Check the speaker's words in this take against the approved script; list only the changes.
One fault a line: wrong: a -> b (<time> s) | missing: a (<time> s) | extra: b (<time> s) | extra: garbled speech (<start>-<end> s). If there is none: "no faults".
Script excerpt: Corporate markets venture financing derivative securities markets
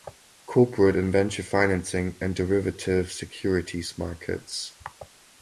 wrong: markets -> and (0.9 s)
extra: and (2.2 s)